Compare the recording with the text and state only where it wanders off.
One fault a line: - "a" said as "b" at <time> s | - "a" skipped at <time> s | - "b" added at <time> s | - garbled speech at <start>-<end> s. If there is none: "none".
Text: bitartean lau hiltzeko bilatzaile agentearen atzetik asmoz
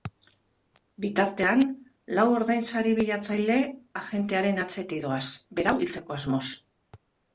- "hiltzeko" said as "ordainsari" at 2.4 s
- "doaz berau hiltzeko" added at 5.1 s